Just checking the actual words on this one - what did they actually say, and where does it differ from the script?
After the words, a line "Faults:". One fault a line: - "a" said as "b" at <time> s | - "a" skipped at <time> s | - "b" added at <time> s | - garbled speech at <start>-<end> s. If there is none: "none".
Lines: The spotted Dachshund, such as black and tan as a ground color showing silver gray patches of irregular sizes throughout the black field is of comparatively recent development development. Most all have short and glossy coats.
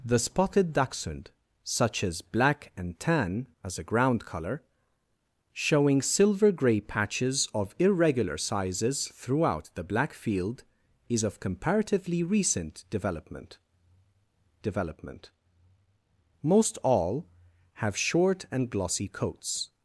The spotted Dachshund, such as black and tan as a ground color showing silver gray patches of irregular sizes throughout the black field is of comparatively recent development development. Most all have short and glossy coats.
Faults:
none